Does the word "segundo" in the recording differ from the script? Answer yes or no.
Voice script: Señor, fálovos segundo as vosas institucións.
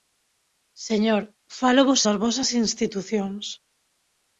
yes